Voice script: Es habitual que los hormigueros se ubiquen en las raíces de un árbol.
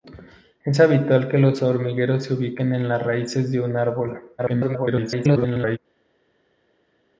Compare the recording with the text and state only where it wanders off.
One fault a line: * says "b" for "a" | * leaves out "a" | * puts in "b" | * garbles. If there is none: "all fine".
* garbles